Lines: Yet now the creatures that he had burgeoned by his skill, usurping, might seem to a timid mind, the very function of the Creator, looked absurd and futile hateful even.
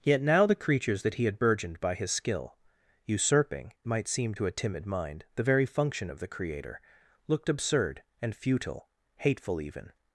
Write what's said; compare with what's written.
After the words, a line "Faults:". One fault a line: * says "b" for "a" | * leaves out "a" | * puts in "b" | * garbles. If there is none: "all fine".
Yet now the creatures that he had burgeoned by his skill, usurping, might seem to a timid mind, the very function of the Creator, looked absurd and futile hateful even.
Faults:
all fine